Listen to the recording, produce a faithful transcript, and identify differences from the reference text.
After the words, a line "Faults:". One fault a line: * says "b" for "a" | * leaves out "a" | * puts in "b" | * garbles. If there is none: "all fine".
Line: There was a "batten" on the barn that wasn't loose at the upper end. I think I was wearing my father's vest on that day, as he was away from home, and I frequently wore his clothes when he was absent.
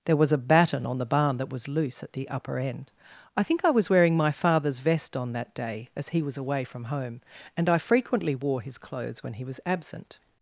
There was a "batten" on the barn that was loose at the upper end. I think I was wearing my father's vest on that day, as he was away from home, and I frequently wore his clothes when he was absent.
Faults:
* says "was" for "wasn't"